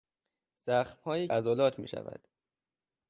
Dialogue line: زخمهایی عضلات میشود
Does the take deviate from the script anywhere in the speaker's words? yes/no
no